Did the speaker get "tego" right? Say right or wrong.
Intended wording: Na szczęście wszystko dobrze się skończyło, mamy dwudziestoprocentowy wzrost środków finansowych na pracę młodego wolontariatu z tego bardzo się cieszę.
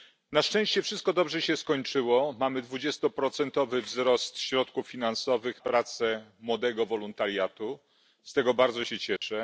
right